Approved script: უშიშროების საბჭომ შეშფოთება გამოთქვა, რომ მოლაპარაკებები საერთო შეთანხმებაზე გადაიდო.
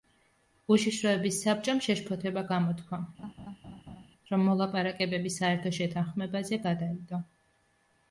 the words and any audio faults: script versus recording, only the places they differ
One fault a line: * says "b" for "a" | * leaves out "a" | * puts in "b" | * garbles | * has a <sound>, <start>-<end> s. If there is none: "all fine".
* has a laugh, 3.2-4.1 s